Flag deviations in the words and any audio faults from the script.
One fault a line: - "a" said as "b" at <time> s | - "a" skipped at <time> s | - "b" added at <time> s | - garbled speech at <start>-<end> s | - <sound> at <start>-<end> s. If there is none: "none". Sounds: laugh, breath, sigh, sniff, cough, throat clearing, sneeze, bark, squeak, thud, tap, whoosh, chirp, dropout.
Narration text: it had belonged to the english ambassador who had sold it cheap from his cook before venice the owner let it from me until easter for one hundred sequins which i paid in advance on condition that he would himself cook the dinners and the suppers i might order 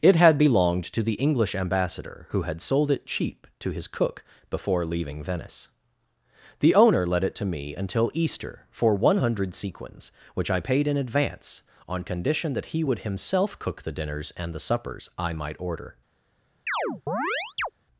- "from" said as "to" at 3.6 s
- "leaving" added at 4.8 s
- "from" said as "to" at 7.3 s
- chirp at 16.7-17.7 s